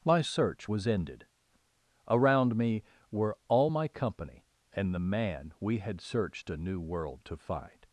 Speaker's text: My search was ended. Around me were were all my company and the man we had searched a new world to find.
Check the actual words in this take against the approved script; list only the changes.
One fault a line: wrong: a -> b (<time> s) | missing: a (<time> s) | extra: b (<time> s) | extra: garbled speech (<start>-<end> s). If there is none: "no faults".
missing: were (3.4 s)